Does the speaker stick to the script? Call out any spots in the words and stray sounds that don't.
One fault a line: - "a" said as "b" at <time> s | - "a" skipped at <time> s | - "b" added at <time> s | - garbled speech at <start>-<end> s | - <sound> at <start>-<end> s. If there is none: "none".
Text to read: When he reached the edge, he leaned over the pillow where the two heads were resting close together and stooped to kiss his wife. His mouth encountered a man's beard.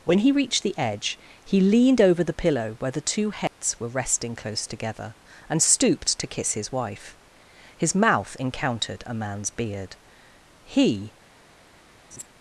- dropout at 3.5-3.6 s
- "He" added at 10.6 s
- laugh at 12.1-12.3 s